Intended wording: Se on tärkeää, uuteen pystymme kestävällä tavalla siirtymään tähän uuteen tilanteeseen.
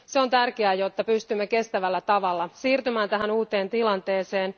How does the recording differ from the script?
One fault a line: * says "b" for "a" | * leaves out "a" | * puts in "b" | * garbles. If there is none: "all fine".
* says "jotta" for "uuteen"